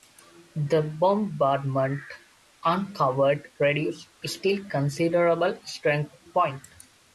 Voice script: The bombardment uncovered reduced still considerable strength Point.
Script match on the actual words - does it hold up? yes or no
yes